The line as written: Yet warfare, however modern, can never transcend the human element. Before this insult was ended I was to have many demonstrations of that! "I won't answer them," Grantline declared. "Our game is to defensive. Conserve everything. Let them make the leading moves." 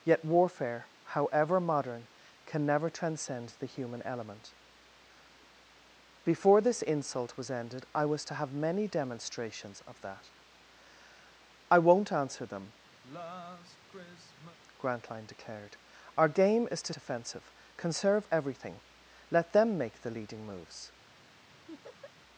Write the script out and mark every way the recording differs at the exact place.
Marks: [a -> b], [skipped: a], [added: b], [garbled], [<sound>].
Yet warfare, however modern, can never transcend the human element. Before this insult was ended I was to have many demonstrations of that! "I won't answer them," [sigh] Grantline declared. "Our game is to defensive. Conserve everything. Let them make the leading moves." [laugh]